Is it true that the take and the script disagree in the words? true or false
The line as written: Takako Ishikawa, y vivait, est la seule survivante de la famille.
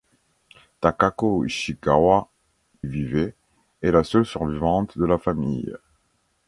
false